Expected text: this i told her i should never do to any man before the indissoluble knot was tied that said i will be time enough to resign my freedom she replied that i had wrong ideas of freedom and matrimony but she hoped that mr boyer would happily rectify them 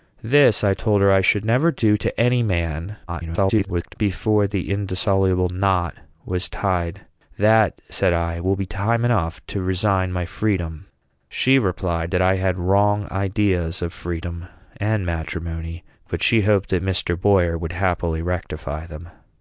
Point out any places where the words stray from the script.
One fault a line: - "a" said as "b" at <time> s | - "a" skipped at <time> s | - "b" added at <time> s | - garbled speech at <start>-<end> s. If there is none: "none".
- garbled speech at 3.1-3.9 s